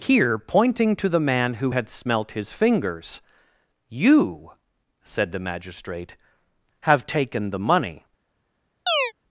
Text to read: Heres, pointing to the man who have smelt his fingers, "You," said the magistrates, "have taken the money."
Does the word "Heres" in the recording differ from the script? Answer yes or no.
yes